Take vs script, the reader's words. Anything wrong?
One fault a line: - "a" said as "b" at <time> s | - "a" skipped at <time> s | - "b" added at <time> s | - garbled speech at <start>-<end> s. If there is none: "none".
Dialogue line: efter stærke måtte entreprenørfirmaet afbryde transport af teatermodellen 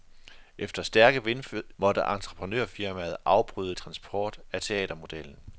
none